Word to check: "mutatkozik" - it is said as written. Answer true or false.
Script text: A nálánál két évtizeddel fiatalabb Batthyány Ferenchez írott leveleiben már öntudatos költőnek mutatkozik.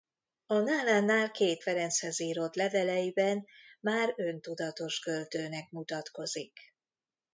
true